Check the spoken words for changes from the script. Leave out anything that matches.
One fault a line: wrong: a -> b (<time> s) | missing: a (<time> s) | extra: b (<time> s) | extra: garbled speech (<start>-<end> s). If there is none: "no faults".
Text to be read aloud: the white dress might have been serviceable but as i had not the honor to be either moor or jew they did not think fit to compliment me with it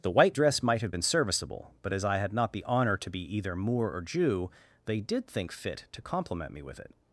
missing: not (5.3 s)